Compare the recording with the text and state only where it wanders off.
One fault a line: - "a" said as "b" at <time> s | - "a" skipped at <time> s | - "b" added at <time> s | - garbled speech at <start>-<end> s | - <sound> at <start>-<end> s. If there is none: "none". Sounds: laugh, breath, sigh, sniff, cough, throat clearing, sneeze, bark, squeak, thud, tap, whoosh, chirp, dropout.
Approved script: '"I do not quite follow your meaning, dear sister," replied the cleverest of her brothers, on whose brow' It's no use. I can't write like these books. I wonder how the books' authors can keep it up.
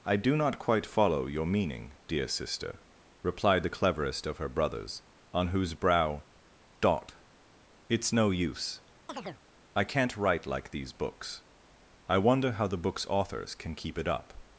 - "dot" added at 6.8 s
- chirp at 9.1-9.4 s